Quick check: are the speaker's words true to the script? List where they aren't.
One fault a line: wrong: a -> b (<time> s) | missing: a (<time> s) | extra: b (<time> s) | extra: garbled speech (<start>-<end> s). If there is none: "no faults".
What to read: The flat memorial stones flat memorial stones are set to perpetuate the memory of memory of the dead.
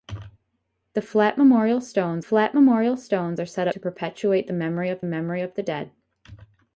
no faults